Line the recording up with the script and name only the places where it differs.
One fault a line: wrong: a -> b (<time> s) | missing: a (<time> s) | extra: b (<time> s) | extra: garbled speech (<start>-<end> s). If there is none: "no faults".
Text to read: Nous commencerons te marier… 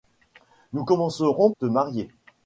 no faults